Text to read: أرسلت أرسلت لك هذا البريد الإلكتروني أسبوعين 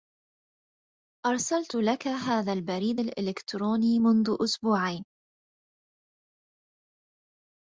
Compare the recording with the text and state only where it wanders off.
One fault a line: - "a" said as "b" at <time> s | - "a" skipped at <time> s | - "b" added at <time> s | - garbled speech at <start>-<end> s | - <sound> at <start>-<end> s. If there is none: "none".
- "أرسلت" skipped at 1.8 s
- "منذ" added at 4.0 s